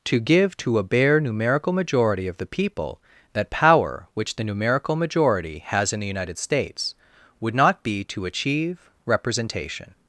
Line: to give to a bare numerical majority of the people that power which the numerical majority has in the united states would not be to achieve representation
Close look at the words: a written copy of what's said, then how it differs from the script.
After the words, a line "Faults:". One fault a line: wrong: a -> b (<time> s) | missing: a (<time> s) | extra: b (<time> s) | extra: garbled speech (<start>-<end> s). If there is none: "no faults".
to give to a bare numerical majority of the people that power which the numerical majority has in the united states would not be to achieve representation
Faults:
no faults